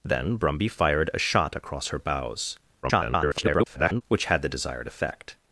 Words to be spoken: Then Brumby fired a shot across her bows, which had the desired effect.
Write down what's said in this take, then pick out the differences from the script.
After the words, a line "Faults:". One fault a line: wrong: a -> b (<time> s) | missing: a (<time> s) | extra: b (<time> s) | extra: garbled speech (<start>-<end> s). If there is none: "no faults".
Then Brumby fired a shot across her bows, [garbled] which had the desired effect.
Faults:
extra: garbled speech (2.8-4.0 s)